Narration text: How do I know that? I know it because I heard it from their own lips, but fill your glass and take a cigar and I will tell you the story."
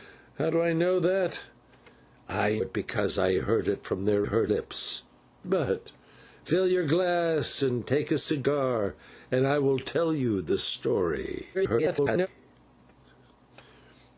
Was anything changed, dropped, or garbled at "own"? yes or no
yes